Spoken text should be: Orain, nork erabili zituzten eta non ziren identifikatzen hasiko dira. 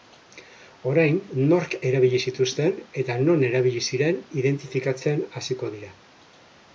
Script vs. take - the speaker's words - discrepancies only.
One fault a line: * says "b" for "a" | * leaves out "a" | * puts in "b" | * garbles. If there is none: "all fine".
* puts in "erabili"